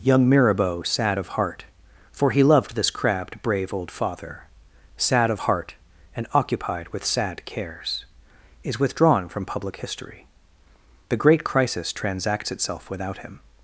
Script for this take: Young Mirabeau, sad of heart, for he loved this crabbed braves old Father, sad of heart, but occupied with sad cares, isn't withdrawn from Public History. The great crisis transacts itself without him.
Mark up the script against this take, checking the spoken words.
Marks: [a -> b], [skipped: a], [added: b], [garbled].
Young Mirabeau, sad of heart, for he loved this crabbed [braves -> brave] old Father, sad of heart, [but -> and] occupied with sad cares, [isn't -> is] withdrawn from Public History. The great crisis transacts itself without him.